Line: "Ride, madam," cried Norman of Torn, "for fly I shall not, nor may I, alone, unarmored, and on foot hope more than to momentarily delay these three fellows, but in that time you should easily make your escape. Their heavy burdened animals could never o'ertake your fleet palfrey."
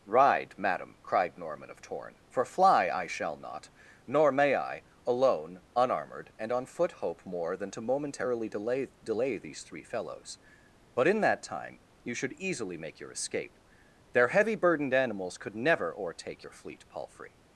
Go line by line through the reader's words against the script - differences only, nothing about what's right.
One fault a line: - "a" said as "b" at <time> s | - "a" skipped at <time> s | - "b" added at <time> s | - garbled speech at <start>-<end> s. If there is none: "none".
- "delay" added at 9.0 s